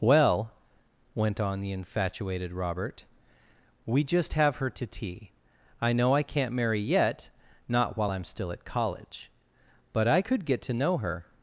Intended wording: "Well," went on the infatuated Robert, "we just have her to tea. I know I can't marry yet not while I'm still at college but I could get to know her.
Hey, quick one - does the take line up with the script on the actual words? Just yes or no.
yes